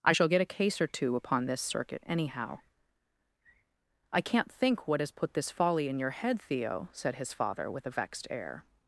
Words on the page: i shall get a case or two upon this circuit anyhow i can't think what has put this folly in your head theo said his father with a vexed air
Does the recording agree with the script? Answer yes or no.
yes